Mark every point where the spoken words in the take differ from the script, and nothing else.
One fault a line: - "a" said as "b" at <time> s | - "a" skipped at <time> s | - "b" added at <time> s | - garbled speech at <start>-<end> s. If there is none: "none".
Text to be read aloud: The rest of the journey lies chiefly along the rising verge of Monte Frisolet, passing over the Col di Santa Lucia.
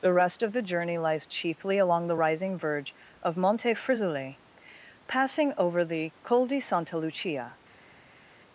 none